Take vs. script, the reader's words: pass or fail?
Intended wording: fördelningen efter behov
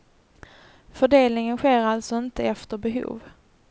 fail